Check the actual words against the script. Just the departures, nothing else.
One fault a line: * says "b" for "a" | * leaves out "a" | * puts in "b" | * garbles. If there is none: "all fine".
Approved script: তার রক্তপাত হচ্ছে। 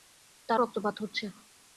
all fine